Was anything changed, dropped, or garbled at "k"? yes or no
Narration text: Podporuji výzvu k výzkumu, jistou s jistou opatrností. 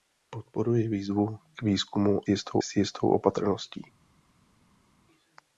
no